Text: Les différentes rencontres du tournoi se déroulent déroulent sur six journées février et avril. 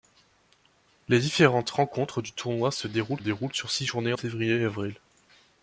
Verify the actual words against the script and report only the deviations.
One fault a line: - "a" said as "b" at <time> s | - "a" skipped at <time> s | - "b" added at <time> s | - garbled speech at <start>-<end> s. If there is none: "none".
none